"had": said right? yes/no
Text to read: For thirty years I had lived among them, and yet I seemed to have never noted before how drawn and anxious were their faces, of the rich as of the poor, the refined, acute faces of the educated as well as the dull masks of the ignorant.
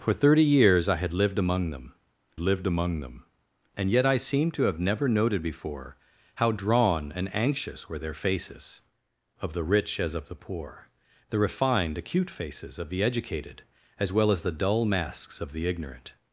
yes